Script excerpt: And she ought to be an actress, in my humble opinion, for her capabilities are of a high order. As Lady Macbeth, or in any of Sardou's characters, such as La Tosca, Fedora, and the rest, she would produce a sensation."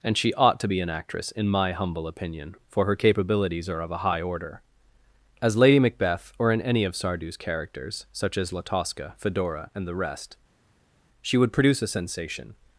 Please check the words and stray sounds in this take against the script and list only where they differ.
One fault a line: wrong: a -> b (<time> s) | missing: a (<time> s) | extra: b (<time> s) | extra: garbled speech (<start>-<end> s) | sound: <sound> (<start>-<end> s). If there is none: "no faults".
no faults